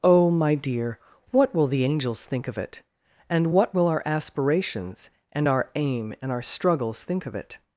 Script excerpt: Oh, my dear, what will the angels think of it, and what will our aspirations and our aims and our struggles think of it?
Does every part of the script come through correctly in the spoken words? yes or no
no